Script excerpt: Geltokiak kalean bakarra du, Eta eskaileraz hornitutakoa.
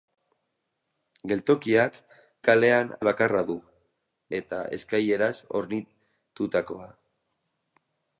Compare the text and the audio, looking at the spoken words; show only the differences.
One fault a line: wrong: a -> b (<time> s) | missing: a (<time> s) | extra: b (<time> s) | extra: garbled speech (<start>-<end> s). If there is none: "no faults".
no faults